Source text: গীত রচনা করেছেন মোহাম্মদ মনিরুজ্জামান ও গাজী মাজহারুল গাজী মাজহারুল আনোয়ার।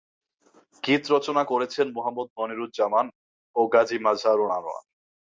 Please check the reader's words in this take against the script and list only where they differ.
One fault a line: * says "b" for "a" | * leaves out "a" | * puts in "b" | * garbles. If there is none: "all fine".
* leaves out "গাজী মাজহারুল"